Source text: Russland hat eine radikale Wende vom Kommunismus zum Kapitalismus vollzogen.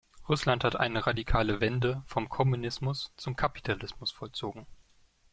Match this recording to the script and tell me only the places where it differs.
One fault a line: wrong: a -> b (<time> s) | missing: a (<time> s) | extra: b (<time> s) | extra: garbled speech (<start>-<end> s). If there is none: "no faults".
no faults